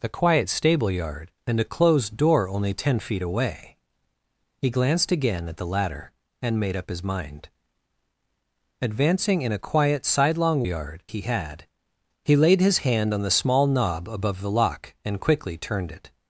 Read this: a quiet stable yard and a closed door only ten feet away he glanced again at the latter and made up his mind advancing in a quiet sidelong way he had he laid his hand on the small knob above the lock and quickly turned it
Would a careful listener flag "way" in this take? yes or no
yes